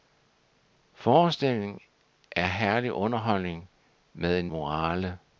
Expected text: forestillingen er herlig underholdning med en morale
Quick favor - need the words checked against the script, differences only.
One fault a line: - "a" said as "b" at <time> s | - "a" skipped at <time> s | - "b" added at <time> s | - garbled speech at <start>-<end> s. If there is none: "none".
none